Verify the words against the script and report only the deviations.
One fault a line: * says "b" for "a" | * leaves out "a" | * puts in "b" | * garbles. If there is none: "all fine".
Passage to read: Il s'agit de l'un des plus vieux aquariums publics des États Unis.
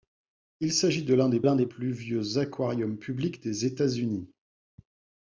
* puts in "l'un des"